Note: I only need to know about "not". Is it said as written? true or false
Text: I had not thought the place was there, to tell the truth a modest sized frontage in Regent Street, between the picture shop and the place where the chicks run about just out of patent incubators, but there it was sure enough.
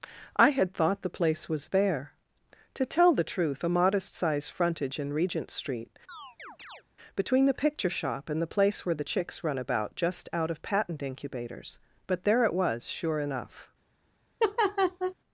false